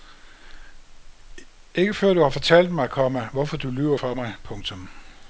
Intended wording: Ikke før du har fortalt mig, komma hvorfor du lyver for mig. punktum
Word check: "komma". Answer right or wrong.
right